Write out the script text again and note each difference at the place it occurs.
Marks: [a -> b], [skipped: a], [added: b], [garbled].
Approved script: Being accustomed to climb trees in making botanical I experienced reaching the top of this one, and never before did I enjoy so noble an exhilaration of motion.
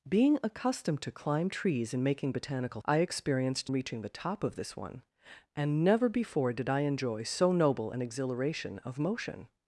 Being accustomed to climb trees in making botanical I experienced reaching the top of this one, and never before did I enjoy so noble an exhilaration of motion.